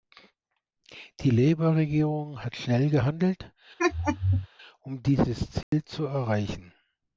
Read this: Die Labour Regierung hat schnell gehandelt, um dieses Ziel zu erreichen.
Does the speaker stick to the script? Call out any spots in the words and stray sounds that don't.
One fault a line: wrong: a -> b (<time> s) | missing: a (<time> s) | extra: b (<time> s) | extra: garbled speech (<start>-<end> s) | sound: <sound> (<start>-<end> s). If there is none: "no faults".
sound: laugh (3.8-4.5 s)
sound: dropout (5.6-5.7 s)